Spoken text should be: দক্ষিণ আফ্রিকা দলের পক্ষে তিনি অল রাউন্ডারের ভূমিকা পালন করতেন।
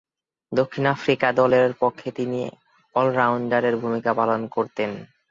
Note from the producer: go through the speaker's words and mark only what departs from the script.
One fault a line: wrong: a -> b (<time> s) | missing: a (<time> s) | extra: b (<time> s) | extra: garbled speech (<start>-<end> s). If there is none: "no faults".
no faults